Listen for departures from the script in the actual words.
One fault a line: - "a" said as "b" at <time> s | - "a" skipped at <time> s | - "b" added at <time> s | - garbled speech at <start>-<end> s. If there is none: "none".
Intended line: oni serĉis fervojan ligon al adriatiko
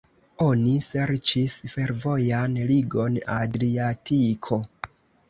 - "al" skipped at 3.2 s